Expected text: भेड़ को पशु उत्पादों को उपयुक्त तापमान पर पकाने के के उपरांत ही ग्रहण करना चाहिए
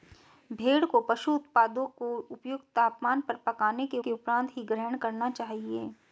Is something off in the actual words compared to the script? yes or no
no